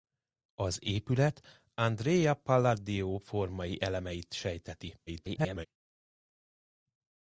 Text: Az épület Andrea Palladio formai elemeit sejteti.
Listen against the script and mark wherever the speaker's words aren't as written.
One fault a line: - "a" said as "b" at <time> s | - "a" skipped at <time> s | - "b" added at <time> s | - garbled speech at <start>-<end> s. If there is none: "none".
- garbled speech at 5.1-5.7 s